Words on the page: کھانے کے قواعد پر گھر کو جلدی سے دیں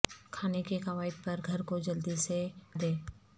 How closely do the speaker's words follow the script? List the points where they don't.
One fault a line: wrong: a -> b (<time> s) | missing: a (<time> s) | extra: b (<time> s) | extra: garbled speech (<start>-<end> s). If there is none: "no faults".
no faults